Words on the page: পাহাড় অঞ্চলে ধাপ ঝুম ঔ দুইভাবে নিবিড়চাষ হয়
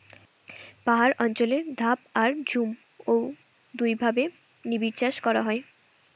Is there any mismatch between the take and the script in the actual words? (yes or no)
yes